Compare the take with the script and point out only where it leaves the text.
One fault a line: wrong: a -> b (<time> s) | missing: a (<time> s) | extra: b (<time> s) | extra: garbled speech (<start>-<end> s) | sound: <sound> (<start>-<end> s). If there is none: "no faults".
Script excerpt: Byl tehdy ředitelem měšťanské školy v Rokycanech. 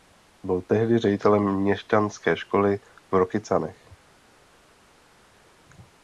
no faults